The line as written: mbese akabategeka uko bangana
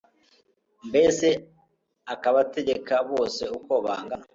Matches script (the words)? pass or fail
fail